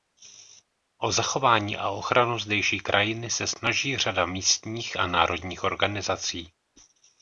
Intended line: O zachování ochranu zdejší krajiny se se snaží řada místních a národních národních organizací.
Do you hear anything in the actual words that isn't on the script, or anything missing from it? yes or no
yes